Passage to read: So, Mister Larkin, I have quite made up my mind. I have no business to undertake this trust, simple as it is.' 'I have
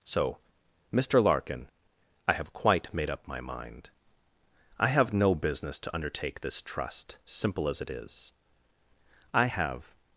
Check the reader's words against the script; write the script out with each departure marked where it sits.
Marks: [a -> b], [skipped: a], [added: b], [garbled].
So, Mister Larkin, I have quite made up my mind. I have no business to undertake this trust, simple as it is.' 'I have